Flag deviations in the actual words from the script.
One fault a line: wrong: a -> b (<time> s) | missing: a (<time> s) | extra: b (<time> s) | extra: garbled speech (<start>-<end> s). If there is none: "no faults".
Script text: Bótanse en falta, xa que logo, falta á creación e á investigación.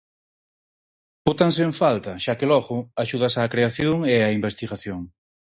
wrong: falta -> axudas (3.0 s)